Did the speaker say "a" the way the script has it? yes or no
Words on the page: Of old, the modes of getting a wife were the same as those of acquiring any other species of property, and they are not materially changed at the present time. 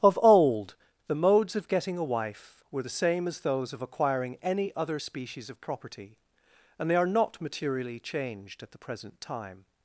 yes